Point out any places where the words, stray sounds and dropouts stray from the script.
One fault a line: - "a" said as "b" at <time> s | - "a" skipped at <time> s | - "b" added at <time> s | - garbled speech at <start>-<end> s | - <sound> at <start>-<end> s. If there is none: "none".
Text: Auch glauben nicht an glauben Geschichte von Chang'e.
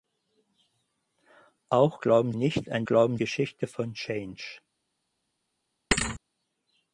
- thud at 5.9-6.2 s